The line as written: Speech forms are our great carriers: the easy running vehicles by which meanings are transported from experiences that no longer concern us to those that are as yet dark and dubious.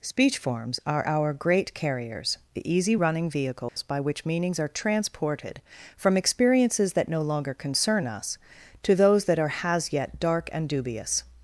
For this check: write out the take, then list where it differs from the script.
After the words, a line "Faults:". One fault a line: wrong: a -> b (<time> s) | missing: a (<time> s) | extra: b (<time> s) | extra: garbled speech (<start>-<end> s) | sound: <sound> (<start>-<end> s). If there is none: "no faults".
Speech forms are our great carriers: the easy running vehicles by which meanings are transported from experiences that no longer concern us to those that are has yet dark and dubious.
Faults:
sound: dropout (3.7-3.8 s)
wrong: as -> has (9.6 s)